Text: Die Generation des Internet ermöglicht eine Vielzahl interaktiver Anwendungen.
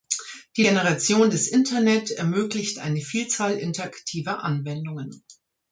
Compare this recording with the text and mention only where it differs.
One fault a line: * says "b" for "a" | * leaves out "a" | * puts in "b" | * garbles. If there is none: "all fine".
all fine